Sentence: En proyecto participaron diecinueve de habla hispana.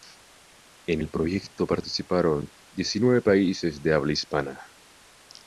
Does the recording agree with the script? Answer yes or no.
no